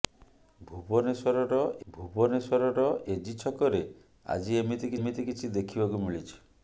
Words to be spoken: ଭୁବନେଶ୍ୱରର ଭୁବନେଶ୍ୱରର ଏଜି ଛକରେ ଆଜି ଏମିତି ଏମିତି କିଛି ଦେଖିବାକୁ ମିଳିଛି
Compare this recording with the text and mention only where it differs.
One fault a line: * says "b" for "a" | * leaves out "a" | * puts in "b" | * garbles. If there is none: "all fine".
all fine